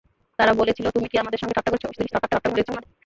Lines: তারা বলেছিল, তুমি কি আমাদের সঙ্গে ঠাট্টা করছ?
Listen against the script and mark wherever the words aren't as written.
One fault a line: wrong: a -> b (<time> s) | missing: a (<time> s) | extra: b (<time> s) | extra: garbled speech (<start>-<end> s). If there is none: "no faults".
extra: garbled speech (1.9-2.8 s)